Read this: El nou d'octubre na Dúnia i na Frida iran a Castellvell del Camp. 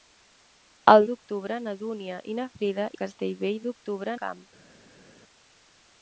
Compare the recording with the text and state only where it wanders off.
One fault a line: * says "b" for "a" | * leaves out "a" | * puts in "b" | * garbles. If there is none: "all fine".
* leaves out "nou"
* leaves out "iran"
* says "d'octubre" for "del"